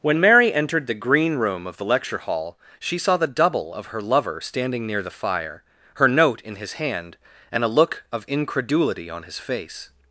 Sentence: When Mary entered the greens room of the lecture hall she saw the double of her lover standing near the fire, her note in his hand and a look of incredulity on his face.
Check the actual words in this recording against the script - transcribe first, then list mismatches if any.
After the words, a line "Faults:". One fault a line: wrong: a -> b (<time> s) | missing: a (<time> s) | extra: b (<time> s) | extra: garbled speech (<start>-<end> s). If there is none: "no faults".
When Mary entered the green room of the lecture hall she saw the double of her lover standing near the fire, her note in his hand and a look of incredulity on his face.
Faults:
wrong: greens -> green (0.9 s)